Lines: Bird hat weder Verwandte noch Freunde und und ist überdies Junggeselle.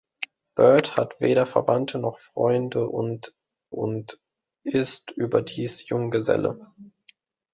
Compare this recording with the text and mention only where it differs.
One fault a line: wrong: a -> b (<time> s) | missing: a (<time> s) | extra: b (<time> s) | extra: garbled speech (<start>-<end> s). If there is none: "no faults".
no faults